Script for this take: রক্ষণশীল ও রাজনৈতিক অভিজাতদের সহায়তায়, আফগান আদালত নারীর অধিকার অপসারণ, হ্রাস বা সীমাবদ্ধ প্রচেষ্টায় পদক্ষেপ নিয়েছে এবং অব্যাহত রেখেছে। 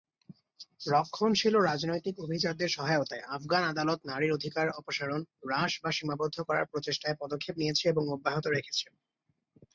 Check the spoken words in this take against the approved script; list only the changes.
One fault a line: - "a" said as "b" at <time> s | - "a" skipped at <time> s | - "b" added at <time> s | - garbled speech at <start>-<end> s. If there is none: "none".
- "করার" added at 6.4 s